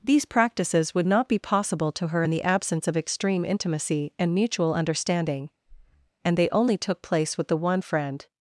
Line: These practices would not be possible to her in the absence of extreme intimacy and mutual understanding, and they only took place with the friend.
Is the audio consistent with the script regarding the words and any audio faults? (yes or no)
no